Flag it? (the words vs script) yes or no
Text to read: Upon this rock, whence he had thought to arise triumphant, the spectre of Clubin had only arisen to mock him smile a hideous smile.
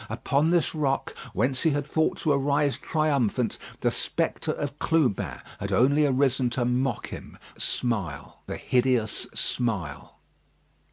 no